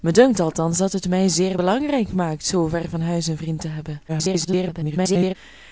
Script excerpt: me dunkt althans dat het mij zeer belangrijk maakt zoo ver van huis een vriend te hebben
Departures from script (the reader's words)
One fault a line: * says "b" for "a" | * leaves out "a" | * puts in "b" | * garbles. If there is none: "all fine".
* garbles